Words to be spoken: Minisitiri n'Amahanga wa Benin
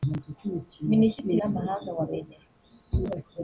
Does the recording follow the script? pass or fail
pass